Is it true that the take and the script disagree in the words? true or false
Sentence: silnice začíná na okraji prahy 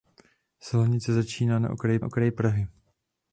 true